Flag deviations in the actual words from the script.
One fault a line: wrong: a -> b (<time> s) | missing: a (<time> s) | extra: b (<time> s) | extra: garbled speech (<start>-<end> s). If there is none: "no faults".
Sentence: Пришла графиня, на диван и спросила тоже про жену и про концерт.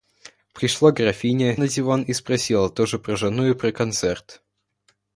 no faults